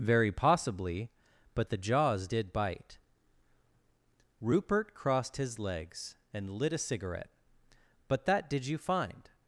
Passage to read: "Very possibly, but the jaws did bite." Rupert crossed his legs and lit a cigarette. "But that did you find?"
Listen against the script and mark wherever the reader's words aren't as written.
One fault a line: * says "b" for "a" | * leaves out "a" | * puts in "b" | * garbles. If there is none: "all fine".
all fine